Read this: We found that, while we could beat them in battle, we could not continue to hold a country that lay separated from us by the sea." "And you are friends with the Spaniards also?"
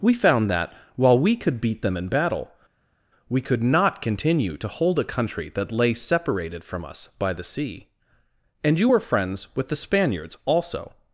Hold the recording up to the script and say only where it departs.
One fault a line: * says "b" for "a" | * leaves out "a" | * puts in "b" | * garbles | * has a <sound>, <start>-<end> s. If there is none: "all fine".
* says "were" for "are"